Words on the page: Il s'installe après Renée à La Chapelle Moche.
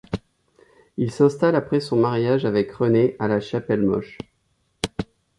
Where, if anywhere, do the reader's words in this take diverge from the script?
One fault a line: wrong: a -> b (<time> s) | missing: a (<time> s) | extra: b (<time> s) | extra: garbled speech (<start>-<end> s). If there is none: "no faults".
extra: son mariage avec (1.8 s)